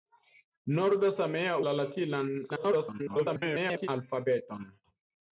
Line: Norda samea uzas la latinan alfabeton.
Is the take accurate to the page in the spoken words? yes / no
no